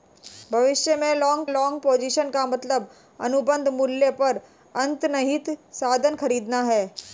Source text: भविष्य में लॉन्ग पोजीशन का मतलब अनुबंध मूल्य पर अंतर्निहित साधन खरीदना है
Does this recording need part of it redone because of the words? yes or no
yes